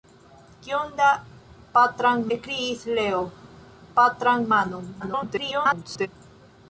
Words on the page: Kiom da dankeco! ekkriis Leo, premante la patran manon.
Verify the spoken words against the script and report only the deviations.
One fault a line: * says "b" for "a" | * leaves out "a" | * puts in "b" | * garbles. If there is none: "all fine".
* says "patran" for "dankeco"
* leaves out "premante la"
* garbles